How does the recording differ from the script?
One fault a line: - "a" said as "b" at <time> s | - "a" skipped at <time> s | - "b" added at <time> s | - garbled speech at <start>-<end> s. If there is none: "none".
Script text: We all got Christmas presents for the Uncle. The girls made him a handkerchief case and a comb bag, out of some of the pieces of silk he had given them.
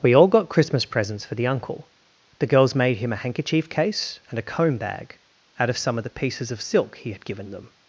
none